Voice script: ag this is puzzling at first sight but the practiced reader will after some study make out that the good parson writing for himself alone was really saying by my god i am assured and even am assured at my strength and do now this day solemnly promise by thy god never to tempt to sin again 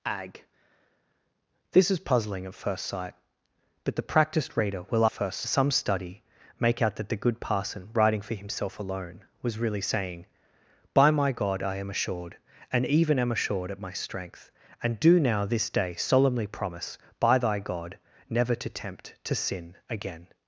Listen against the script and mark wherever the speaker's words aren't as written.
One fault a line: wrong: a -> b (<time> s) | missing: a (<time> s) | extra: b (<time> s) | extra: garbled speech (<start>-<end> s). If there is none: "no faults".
wrong: after -> first (5.1 s)